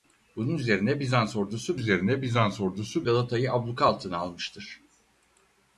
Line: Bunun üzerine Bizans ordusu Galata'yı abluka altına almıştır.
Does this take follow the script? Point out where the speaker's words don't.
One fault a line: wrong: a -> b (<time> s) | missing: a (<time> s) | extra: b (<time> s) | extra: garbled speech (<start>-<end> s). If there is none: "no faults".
extra: üzerine Bizans ordusu (1.8 s)